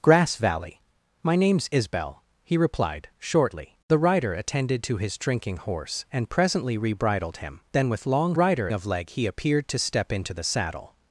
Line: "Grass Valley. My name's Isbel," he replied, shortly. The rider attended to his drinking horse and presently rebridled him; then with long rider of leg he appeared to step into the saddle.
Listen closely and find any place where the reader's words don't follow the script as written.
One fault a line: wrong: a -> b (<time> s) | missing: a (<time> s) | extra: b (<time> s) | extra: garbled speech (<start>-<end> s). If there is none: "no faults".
no faults